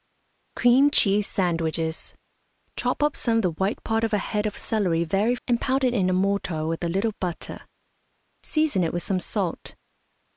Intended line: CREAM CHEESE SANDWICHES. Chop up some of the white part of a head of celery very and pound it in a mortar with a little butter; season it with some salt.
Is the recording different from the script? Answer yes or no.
no